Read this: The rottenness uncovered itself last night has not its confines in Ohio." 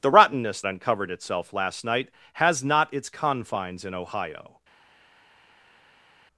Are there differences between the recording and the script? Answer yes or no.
no